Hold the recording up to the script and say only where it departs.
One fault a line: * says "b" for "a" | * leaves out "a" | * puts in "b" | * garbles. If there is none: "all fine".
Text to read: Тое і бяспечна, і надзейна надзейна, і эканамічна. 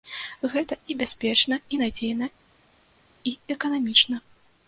* says "Гэта" for "Тое"
* leaves out "надзейна"